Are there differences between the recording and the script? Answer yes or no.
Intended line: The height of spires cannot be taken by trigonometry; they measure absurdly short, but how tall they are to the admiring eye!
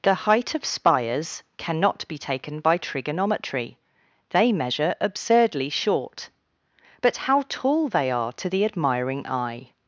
no